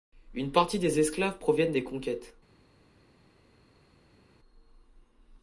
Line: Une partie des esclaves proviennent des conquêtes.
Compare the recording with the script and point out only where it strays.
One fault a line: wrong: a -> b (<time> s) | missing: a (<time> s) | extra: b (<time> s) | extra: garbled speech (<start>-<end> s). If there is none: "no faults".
no faults